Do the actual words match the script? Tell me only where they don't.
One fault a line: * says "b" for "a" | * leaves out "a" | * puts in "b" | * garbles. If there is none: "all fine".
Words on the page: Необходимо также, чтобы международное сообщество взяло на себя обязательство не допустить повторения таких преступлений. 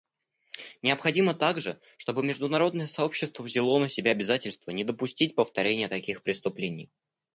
all fine